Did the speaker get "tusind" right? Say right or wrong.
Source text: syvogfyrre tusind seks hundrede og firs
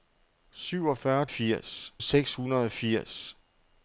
wrong